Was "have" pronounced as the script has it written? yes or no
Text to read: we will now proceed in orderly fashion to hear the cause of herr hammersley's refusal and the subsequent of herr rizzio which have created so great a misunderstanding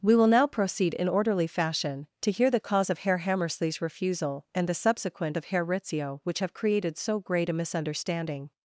yes